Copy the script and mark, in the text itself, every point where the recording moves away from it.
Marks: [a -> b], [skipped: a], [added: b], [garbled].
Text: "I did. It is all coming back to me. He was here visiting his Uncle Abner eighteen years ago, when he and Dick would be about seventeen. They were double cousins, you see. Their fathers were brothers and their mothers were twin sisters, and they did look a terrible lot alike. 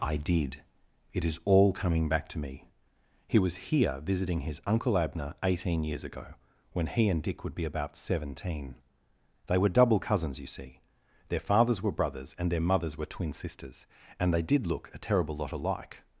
"I did. It is all coming back to me. He was here visiting his Uncle Abner eighteen years ago, when he and Dick would be about seventeen. They were double cousins, you see. Their fathers were brothers and their mothers were twin sisters, and they did look a terrible lot alike.